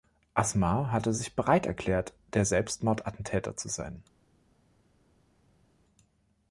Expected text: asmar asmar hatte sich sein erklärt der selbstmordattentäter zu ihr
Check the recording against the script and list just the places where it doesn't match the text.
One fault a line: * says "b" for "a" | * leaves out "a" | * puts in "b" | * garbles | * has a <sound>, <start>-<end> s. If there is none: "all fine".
* leaves out "asmar"
* says "bereit" for "sein"
* says "sein" for "ihr"